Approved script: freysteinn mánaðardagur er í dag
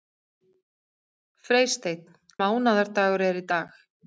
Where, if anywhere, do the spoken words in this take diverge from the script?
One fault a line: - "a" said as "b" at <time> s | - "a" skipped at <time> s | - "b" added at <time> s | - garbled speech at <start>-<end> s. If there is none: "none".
none